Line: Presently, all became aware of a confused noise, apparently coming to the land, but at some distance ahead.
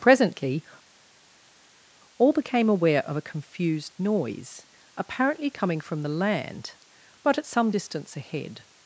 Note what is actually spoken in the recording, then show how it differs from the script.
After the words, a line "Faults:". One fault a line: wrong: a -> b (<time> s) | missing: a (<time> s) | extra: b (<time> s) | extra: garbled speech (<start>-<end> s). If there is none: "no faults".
Presently, all became aware of a confused noise, apparently coming from the land, but at some distance ahead.
Faults:
wrong: to -> from (5.8 s)